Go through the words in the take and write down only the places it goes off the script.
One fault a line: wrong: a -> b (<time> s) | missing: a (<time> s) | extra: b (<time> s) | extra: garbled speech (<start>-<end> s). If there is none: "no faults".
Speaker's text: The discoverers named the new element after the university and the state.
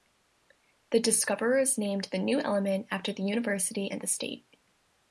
no faults